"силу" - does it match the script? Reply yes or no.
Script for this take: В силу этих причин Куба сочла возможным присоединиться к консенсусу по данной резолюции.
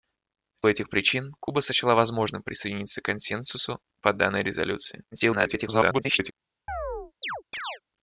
no